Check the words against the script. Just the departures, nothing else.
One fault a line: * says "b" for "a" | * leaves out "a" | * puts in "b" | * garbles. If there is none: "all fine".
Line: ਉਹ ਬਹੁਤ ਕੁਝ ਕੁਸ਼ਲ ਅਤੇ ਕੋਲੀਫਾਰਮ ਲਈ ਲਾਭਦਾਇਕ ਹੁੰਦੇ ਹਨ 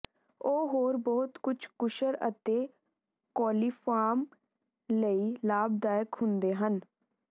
* puts in "ਹੋਰ"